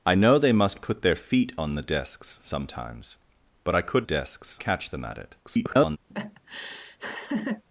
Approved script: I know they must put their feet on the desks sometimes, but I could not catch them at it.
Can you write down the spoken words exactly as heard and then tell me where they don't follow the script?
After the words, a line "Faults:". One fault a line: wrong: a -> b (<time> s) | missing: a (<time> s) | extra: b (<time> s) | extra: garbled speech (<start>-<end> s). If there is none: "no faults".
I know they must put their feet on the desks sometimes, but I could desks catch them at it. [garbled]
Faults:
wrong: not -> desks (4.0 s)
extra: garbled speech (5.4-6.0 s)